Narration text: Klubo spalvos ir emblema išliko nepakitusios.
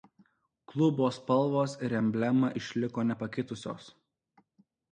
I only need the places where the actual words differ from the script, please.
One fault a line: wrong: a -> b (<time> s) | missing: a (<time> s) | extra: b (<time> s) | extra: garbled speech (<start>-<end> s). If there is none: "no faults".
no faults